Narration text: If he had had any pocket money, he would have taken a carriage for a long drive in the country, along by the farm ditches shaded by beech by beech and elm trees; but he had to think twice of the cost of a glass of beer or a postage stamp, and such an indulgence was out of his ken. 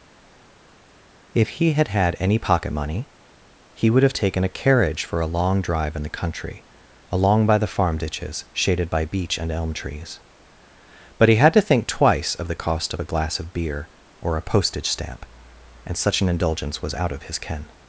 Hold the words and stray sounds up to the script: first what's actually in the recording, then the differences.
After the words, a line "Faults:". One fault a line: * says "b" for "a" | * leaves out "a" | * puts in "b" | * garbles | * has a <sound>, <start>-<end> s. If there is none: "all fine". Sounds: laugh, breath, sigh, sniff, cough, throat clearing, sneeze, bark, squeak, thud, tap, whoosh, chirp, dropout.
If he had had any pocket money, he would have taken a carriage for a long drive in the country, along by the farm ditches shaded by beech and elm trees; but he had to think twice of the cost of a glass of beer or a postage stamp, and such an indulgence was out of his ken.
Faults:
* leaves out "by beech"